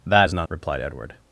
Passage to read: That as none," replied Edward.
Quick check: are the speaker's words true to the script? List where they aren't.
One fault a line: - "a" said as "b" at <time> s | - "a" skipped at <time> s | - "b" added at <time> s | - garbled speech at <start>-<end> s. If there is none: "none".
none